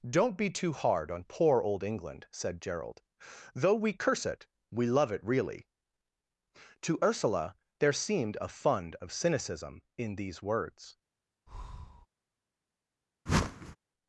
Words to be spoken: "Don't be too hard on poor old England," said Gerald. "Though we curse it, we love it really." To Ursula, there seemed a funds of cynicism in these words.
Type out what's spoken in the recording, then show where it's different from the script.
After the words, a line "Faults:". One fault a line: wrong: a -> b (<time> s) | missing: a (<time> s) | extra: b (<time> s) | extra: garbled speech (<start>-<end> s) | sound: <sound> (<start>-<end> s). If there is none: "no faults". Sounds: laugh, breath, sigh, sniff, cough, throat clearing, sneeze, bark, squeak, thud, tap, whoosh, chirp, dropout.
"Don't be too hard on poor old England," said Gerald. "Though we curse it, we love it really." To Ursula, there seemed a fund of cynicism in these words.
Faults:
wrong: funds -> fund (8.5 s)
sound: breath (11.5-12.1 s)
sound: whoosh (13.3-13.8 s)